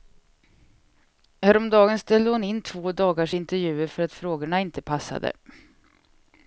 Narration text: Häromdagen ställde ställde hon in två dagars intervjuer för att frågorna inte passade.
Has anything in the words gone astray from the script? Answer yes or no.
yes